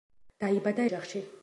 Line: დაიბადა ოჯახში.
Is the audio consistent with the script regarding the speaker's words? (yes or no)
yes